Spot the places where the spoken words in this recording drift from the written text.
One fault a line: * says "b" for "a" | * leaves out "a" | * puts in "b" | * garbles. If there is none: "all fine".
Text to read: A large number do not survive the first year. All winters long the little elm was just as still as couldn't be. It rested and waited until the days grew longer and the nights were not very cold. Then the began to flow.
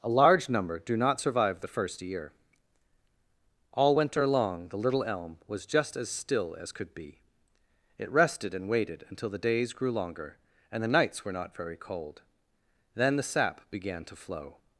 * says "winter" for "winters"
* says "could" for "couldn't"
* puts in "sap"